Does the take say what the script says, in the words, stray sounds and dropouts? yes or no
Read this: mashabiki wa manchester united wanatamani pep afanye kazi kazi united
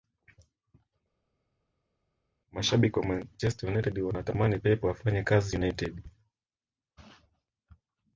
no